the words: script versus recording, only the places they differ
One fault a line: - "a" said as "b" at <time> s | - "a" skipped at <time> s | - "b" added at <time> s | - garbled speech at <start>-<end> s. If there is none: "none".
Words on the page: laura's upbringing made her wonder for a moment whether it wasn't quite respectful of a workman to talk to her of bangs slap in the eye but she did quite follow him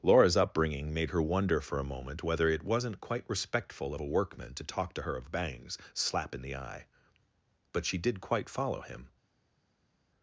none